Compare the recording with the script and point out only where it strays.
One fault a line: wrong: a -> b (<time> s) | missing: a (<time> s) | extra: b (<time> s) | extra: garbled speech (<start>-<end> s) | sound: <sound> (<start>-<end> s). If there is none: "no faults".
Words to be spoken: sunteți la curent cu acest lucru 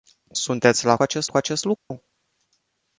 wrong: curent -> acest (1.0 s)
sound: dropout (1.8-1.9 s)